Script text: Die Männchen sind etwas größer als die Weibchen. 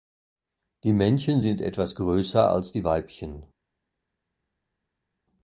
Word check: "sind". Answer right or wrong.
right